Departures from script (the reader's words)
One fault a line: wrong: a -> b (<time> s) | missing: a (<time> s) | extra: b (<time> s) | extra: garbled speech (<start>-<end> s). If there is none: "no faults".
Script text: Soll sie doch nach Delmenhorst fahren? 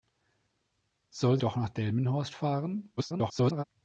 missing: sie (1.4 s)
extra: garbled speech (3.0-3.6 s)